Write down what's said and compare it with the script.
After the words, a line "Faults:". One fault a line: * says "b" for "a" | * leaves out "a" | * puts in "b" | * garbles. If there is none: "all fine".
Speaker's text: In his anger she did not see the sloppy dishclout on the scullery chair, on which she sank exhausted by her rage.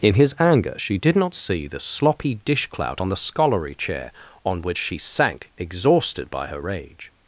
In his anger she did not see the sloppy dishclout on the scullery chair, on which she sank exhausted by her rage.
Faults:
all fine